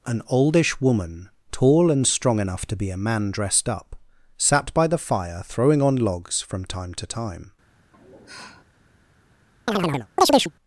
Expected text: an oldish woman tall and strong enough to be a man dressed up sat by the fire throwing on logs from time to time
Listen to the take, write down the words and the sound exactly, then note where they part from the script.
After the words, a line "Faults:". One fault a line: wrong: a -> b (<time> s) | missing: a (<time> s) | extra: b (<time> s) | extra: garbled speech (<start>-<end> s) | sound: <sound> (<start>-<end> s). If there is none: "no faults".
an oldish woman tall and strong enough to be a man dressed up sat by the fire throwing on logs from time to time
Faults:
sound: sigh (7.9-8.6 s)
sound: chirp (9.7-10.5 s)